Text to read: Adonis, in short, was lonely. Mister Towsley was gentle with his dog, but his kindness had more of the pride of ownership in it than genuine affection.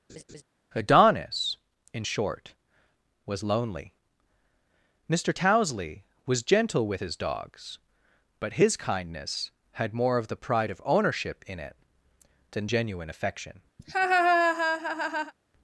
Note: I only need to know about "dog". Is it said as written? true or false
false